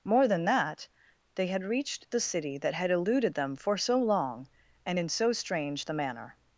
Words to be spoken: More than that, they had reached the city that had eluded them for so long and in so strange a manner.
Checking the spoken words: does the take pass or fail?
fail